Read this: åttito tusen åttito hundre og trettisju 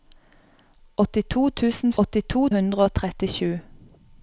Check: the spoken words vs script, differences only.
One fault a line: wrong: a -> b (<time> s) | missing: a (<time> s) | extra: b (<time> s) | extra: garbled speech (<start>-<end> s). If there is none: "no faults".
no faults